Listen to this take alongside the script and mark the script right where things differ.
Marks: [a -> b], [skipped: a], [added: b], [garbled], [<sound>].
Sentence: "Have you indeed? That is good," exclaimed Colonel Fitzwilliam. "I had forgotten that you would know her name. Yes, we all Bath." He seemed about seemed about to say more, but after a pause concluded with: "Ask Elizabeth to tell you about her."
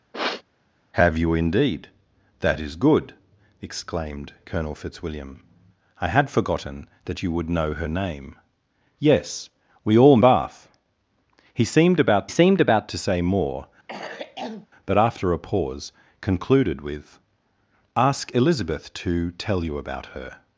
[sniff] "Have you indeed? That is good," exclaimed Colonel Fitzwilliam. "I had forgotten that you would know her name. Yes, we all Bath." He seemed about seemed about to say more, [cough] but after a pause concluded with: "Ask Elizabeth to tell you about her."